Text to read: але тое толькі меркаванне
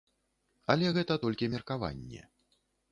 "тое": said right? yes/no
no